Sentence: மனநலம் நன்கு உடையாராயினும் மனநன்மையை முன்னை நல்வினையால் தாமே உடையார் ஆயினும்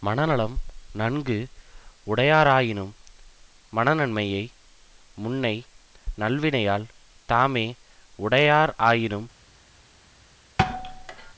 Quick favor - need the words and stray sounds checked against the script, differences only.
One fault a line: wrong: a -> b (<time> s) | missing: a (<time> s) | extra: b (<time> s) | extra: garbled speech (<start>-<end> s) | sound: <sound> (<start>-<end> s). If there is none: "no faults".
sound: thud (10.6-11.3 s)